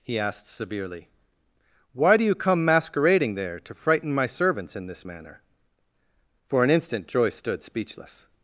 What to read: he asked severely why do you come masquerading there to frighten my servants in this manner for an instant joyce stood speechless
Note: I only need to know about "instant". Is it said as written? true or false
true